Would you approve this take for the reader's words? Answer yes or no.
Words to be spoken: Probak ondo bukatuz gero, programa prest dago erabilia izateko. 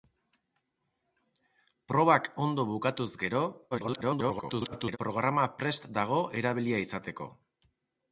no